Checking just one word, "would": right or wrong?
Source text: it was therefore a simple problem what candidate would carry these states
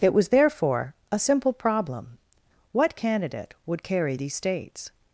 right